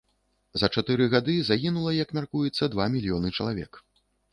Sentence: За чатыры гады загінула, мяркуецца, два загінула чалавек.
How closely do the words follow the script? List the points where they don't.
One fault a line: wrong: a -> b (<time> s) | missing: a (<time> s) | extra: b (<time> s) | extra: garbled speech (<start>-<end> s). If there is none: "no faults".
extra: як (2.0 s)
wrong: загінула -> мільёны (3.0 s)